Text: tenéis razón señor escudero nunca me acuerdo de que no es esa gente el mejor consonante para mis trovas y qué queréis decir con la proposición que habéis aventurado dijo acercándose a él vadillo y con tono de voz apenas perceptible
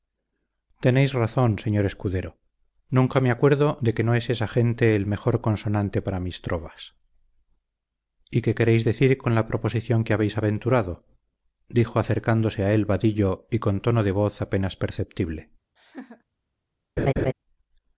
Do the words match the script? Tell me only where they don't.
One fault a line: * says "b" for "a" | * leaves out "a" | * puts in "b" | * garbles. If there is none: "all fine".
all fine